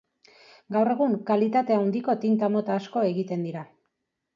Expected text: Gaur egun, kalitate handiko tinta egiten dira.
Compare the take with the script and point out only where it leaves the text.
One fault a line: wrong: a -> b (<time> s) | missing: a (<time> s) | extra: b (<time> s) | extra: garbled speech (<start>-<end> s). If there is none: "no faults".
extra: mota asko (2.6 s)